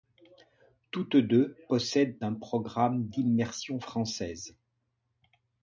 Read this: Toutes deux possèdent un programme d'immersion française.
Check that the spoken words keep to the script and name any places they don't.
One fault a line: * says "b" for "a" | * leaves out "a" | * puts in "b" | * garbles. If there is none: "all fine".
all fine